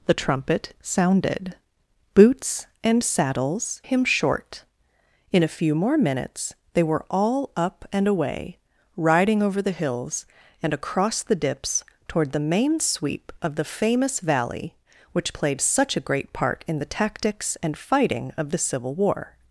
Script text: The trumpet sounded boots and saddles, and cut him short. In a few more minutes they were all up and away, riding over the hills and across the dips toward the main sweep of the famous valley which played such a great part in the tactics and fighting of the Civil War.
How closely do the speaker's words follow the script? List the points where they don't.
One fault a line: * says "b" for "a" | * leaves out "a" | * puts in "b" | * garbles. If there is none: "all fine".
* leaves out "and cut"